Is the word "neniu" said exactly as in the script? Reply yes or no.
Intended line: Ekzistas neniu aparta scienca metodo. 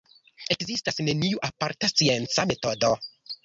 yes